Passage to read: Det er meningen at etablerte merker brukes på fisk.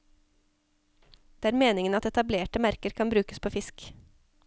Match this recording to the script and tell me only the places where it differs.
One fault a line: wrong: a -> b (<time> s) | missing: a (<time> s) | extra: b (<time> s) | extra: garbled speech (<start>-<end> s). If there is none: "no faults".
extra: kan (3.0 s)